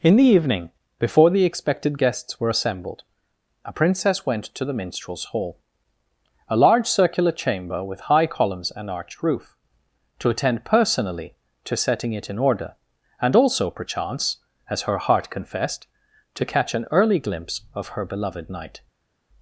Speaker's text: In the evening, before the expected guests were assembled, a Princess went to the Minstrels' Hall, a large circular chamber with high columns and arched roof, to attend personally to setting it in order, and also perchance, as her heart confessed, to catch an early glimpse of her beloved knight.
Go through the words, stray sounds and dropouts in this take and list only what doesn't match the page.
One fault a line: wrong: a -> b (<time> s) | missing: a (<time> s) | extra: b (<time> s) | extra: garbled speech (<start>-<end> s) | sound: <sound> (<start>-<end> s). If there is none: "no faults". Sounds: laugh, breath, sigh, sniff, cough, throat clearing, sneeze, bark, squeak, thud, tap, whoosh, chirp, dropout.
no faults